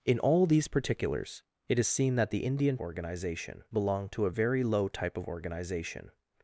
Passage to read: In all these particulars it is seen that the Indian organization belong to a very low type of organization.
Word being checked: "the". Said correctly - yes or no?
yes